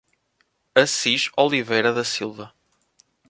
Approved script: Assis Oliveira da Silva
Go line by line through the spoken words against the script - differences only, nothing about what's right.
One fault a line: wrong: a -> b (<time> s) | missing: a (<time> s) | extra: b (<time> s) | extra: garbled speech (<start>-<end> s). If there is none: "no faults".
no faults